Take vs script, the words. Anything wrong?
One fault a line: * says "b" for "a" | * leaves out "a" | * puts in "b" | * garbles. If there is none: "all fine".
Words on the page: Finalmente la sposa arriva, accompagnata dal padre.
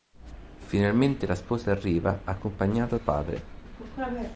* leaves out "dal"